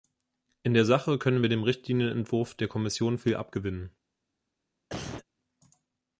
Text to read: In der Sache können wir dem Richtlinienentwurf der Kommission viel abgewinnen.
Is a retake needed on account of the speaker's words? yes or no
no